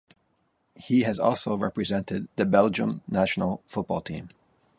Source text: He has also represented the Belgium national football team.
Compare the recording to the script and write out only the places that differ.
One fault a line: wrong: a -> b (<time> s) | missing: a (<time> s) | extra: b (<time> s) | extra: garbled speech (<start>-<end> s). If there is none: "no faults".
no faults